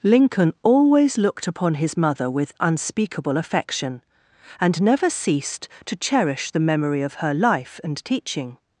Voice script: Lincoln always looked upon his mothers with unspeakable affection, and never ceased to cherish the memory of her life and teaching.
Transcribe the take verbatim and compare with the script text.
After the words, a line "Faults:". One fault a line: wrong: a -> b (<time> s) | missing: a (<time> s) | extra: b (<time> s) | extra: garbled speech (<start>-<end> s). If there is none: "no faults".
Lincoln always looked upon his mother with unspeakable affection, and never ceased to cherish the memory of her life and teaching.
Faults:
wrong: mothers -> mother (1.9 s)